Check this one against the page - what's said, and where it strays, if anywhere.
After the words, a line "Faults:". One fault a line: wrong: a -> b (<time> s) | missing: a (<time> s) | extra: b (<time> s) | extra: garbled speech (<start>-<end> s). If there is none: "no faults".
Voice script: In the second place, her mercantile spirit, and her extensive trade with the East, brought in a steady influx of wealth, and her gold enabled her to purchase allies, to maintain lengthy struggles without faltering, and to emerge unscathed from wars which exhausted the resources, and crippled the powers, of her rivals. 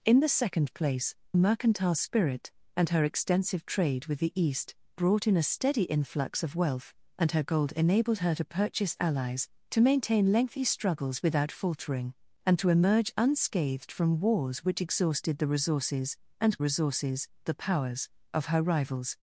In the second place, mercantile spirit, and her extensive trade with the East, brought in a steady influx of wealth, and her gold enabled her to purchase allies, to maintain lengthy struggles without faltering, and to emerge unscathed from wars which exhausted the resources, and resources the powers, of her rivals.
Faults:
missing: her (1.1 s)
wrong: crippled -> resources (16.6 s)